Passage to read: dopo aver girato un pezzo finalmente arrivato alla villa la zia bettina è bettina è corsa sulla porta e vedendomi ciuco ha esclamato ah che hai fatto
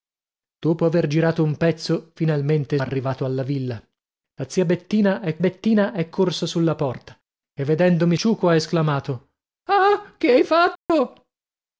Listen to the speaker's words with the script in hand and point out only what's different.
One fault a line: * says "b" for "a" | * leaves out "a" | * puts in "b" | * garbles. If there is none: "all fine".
all fine